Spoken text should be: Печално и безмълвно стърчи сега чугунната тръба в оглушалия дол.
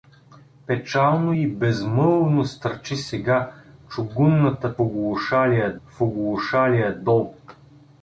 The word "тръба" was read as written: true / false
false